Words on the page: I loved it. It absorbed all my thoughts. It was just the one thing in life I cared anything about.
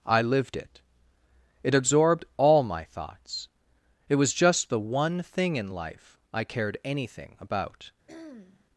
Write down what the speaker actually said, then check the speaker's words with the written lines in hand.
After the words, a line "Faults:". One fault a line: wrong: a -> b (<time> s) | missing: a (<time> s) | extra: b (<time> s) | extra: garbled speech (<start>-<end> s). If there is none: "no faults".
I lived it. It absorbed all my thoughts. It was just the one thing in life I cared anything about.
Faults:
wrong: loved -> lived (0.2 s)